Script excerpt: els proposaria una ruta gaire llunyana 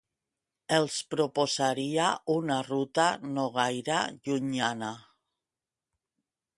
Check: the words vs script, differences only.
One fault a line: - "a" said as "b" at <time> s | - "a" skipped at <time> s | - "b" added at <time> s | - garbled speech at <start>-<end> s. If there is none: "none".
- "no" added at 3.4 s